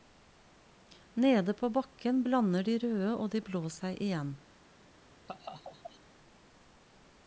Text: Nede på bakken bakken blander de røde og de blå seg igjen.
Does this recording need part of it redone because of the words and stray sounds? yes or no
yes